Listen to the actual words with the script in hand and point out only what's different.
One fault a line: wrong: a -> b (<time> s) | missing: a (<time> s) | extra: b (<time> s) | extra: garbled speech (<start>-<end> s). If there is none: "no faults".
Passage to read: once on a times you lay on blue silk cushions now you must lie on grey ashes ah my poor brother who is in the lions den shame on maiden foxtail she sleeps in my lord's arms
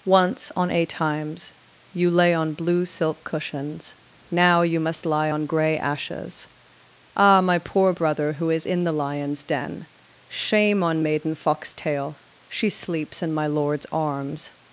no faults